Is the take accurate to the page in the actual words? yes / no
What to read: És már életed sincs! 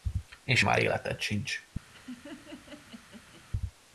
yes